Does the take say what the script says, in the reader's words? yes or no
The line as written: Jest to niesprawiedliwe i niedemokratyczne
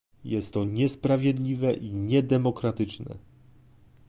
yes